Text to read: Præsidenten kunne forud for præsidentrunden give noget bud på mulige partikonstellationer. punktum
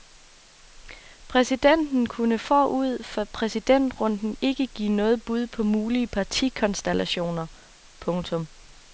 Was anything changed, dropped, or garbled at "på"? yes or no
no